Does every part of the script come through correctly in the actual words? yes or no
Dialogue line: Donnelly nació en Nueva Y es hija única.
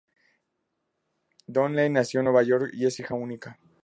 no